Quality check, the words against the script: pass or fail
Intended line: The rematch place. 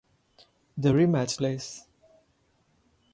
pass